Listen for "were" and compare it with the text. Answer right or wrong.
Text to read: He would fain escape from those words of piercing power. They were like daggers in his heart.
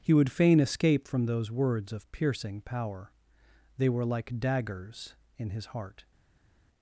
right